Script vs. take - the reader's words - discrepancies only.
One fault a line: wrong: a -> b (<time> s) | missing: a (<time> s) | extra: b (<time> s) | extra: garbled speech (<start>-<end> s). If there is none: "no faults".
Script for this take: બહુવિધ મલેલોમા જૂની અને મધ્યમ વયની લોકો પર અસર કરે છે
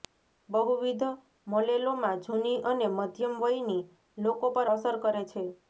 no faults